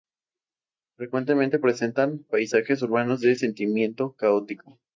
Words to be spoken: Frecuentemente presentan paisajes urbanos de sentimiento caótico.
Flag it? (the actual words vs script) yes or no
no